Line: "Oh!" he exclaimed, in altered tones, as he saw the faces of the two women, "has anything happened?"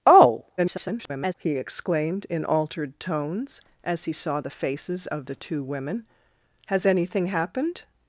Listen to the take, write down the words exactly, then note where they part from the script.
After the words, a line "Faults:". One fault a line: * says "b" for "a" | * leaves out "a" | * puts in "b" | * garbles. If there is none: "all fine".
"Oh!" [garbled] he exclaimed, in altered tones, as he saw the faces of the two women, "has anything happened?"
Faults:
* garbles